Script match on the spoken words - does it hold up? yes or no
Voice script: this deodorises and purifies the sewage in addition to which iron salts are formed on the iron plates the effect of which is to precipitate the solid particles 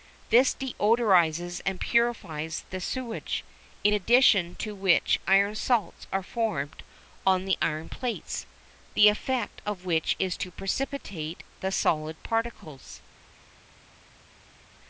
yes